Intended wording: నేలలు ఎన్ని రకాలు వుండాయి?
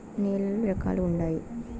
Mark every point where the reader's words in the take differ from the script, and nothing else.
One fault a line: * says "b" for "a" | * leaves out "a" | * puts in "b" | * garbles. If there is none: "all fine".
* leaves out "ఎన్ని"